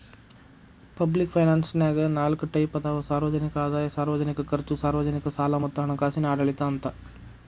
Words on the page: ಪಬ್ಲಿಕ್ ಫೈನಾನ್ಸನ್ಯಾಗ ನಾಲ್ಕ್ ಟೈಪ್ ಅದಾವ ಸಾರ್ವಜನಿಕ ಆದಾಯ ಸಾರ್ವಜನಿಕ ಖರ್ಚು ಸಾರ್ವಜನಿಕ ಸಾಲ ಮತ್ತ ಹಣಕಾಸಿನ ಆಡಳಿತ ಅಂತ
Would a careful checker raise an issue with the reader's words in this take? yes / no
no